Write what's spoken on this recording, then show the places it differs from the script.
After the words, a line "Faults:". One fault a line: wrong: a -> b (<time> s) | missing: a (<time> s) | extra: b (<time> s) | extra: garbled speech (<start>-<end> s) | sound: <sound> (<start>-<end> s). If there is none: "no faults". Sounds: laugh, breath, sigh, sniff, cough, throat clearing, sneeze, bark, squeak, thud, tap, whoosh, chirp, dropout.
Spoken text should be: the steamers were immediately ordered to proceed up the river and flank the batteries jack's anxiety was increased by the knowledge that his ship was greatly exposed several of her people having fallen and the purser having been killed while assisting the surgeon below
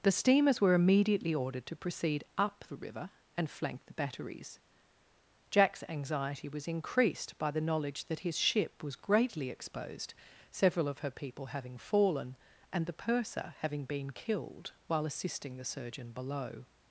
the steamers were immediately ordered to proceed up the river and flank the batteries jack's anxiety was increased by the knowledge that his ship was greatly exposed several of her people having fallen and the purser having been killed while assisting the surgeon below
Faults:
no faults